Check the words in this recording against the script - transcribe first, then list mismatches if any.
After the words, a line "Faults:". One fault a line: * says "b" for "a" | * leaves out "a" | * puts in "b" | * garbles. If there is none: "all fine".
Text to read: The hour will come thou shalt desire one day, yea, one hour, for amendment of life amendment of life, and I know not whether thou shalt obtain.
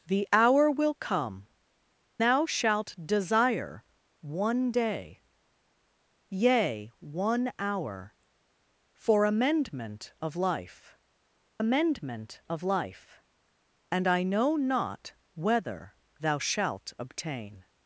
The hour will come thou shalt desire one day, yea, one hour, for amendment of life amendment of life, and I know not whether thou shalt obtain.
Faults:
all fine